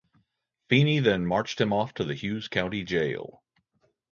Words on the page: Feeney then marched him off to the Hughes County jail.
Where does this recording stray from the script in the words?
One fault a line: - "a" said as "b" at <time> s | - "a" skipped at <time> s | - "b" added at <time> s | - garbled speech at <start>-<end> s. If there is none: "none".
none